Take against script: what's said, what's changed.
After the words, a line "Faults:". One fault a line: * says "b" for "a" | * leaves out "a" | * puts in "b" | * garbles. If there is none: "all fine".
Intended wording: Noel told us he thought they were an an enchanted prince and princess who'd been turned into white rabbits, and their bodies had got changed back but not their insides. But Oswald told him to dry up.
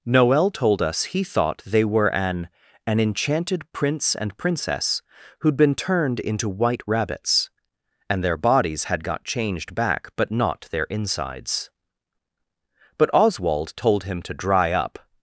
Noel told us he thought they were an an enchanted prince and princess who'd been turned into white rabbits, and their bodies had got changed back but not their insides. But Oswald told him to dry up.
Faults:
all fine